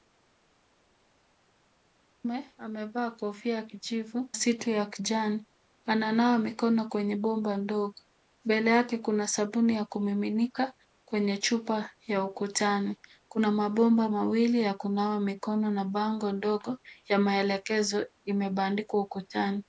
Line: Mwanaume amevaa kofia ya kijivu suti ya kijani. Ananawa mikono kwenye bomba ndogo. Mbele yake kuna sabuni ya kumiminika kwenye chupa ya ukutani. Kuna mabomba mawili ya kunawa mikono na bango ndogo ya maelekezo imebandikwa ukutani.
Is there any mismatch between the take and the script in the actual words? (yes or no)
no